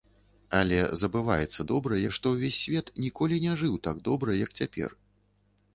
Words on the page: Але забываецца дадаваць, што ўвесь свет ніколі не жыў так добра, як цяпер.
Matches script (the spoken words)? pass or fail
fail